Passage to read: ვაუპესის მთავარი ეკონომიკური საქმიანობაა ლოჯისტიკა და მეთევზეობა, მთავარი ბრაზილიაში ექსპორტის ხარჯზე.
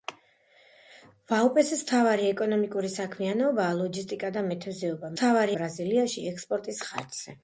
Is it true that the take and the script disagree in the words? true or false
false